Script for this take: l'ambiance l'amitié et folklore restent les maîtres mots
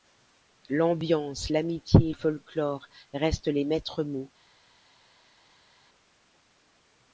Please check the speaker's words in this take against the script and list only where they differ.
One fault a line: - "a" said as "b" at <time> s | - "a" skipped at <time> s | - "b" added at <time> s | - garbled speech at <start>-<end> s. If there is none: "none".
none